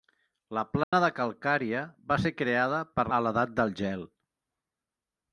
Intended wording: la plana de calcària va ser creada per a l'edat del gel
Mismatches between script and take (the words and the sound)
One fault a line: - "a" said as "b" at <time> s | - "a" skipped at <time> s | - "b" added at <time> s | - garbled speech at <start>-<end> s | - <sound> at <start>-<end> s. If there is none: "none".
- dropout at 0.8-0.9 s